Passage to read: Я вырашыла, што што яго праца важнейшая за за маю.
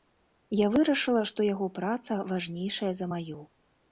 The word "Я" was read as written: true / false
true